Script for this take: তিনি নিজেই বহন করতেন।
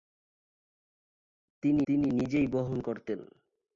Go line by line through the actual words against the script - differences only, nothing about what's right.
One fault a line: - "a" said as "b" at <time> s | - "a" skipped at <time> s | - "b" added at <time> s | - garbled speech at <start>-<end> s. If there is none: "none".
- "তিনি" added at 1.9 s